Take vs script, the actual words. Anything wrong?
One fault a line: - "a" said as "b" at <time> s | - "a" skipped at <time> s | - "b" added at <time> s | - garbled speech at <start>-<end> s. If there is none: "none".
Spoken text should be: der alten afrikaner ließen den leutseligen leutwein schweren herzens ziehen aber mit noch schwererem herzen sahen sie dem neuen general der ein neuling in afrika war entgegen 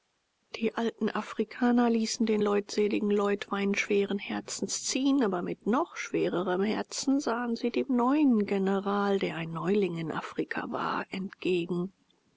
- "der" said as "die" at 0.6 s